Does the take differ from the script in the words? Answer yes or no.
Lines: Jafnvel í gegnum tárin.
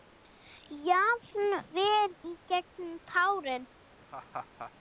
no